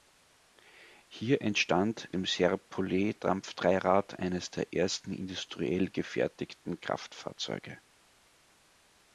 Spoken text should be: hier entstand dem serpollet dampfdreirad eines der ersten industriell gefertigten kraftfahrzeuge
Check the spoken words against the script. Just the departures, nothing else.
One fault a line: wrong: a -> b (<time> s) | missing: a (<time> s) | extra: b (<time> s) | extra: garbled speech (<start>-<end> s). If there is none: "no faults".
no faults